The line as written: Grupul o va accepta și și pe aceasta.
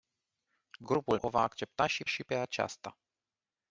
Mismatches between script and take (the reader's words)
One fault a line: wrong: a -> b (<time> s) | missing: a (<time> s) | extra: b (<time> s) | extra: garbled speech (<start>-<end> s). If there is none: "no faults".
no faults